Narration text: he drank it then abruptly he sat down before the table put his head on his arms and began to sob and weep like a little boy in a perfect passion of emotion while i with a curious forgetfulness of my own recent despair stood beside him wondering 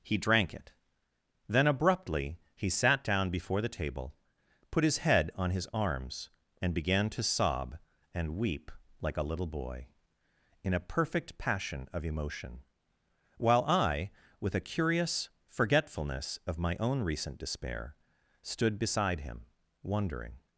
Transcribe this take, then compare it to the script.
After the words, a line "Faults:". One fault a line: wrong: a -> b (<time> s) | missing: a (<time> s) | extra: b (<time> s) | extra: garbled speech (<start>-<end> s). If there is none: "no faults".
he drank it then abruptly he sat down before the table put his head on his arms and began to sob and weep like a little boy in a perfect passion of emotion while i with a curious forgetfulness of my own recent despair stood beside him wondering
Faults:
no faults